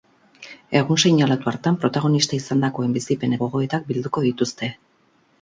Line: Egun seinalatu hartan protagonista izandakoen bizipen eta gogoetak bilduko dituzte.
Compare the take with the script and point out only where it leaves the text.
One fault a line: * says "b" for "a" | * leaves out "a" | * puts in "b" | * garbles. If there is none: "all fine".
* leaves out "eta"